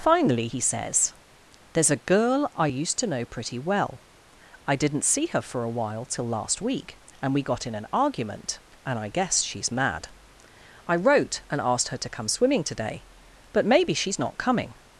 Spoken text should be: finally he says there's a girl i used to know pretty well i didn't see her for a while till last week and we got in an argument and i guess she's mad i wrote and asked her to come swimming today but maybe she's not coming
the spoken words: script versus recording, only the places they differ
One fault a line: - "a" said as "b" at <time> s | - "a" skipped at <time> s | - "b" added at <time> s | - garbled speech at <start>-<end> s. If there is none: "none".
none